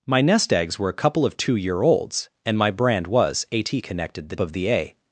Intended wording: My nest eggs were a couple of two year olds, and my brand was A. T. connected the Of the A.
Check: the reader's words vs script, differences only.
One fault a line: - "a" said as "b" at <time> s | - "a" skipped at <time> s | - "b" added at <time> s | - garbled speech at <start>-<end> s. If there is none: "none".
none